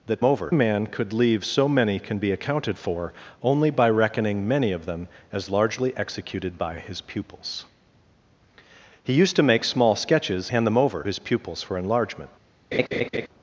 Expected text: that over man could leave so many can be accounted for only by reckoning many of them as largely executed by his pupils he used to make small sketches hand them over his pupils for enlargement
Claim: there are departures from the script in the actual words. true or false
false